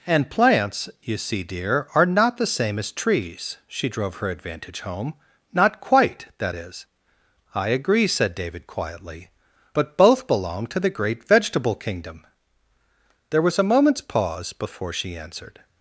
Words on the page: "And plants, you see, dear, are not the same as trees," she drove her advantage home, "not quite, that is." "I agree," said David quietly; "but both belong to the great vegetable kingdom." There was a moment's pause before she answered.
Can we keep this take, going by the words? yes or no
yes